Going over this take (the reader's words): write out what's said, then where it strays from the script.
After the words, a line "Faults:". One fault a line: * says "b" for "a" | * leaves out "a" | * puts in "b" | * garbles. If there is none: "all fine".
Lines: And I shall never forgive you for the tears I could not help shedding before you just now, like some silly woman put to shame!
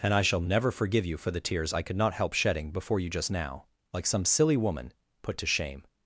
And I shall never forgive you for the tears I could not help shedding before you just now, like some silly woman put to shame!
Faults:
all fine